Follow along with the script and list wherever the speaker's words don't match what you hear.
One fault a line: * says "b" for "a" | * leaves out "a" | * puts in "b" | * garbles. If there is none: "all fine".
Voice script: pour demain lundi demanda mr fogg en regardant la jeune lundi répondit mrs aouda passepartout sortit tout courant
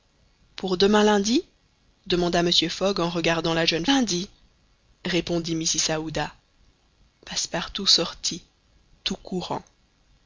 all fine